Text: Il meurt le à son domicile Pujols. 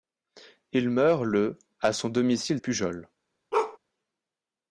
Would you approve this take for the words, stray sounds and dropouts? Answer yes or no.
no